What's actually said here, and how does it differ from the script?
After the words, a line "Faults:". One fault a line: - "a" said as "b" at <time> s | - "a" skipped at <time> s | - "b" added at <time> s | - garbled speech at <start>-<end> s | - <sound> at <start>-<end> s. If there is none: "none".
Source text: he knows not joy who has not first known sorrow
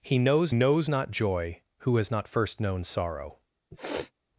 he knows knows not joy who has not first known sorrow
Faults:
- "knows" added at 0.5 s
- sniff at 3.7-4.1 s